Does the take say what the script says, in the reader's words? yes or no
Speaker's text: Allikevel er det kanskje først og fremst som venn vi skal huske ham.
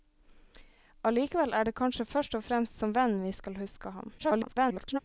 no